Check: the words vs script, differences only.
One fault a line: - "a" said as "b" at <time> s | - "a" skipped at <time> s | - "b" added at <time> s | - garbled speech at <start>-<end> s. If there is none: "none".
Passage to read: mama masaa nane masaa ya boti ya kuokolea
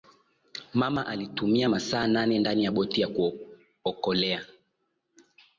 - "alitumia" added at 1.1 s
- "masaa" said as "ndani" at 2.4 s